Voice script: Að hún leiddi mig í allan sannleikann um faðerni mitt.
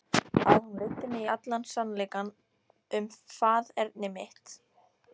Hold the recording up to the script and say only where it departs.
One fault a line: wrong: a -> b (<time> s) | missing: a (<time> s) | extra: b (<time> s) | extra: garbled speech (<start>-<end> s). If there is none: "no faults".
no faults